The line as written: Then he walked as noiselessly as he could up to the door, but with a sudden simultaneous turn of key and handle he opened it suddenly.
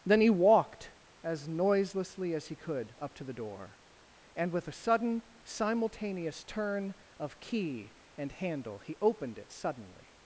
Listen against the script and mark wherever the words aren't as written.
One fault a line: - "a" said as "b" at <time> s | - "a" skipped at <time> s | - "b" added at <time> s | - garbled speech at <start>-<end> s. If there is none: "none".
- "but" said as "and" at 4.3 s